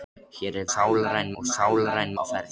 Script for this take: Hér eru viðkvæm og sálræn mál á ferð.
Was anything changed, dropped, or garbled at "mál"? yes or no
yes